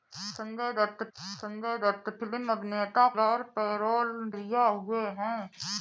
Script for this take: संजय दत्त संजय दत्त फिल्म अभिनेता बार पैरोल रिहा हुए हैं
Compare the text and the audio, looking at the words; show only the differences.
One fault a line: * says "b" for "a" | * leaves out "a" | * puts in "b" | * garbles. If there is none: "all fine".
all fine